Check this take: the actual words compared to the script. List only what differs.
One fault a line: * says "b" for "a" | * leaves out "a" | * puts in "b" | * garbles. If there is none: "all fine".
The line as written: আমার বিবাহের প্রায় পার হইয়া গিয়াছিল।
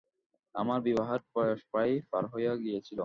* puts in "বয়স"